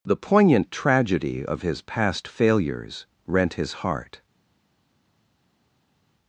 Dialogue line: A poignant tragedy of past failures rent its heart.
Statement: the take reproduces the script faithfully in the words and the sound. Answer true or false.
false